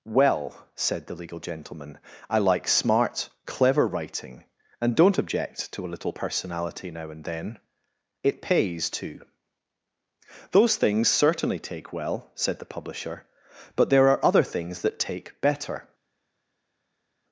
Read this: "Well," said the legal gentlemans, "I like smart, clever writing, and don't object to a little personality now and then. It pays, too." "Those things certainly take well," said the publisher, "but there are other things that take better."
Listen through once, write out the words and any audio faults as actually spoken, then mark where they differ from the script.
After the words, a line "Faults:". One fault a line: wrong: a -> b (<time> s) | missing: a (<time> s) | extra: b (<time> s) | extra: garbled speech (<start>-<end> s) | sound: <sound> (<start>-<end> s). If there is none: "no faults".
"Well," said the legal gentleman, "I like smart, clever writing, and don't object to a little personality now and then. It pays, too." "Those things certainly take well," said the publisher, "but there are other things that take better."
Faults:
wrong: gentlemans -> gentleman (1.4 s)